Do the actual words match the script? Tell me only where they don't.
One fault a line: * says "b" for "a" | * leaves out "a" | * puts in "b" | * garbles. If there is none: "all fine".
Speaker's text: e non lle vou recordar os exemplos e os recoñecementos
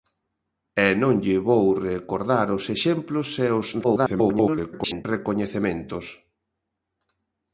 * garbles